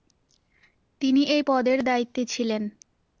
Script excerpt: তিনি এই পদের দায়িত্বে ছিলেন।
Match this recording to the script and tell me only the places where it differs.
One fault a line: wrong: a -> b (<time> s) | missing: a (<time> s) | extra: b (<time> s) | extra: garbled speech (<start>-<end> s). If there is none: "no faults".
no faults